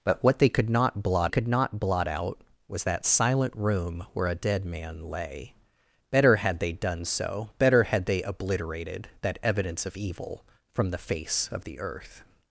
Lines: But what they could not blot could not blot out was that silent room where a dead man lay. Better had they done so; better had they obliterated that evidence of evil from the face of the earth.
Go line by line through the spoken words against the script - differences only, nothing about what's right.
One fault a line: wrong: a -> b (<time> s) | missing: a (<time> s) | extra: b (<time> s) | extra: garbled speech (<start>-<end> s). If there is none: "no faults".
no faults